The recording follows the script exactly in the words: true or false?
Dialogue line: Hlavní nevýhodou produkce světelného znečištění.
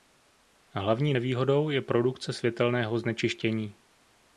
false